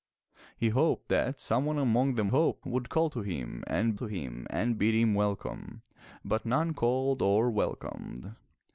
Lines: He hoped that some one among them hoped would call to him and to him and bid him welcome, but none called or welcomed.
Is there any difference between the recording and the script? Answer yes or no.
no